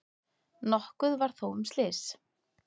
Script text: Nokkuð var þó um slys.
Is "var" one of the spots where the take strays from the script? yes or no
no